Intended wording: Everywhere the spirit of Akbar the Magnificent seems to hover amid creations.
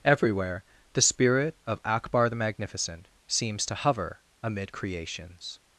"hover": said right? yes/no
yes